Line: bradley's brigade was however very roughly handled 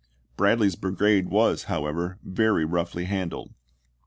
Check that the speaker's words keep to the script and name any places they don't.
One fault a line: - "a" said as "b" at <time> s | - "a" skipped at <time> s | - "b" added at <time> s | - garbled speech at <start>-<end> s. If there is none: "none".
none